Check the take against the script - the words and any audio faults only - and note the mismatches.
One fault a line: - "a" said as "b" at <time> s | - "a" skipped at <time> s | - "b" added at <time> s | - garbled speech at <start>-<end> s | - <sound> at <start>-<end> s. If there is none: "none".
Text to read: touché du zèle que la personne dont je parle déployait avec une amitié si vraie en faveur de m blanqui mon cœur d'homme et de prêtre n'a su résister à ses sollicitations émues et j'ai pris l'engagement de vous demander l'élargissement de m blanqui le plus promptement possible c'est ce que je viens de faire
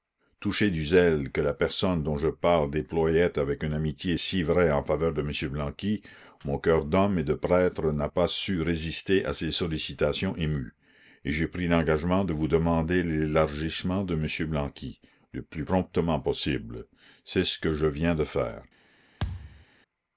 - "pas" added at 8.0 s
- thud at 19.2-19.7 s